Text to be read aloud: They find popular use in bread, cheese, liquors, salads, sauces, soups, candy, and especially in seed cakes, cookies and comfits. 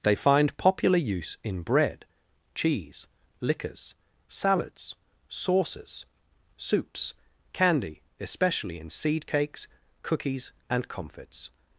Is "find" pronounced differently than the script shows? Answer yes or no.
no